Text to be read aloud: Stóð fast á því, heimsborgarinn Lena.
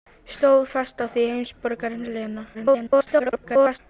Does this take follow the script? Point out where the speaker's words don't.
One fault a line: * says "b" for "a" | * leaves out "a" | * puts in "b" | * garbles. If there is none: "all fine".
* garbles